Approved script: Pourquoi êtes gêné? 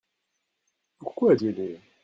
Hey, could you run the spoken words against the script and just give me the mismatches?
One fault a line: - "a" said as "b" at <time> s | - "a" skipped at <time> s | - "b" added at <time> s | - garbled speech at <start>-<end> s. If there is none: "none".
none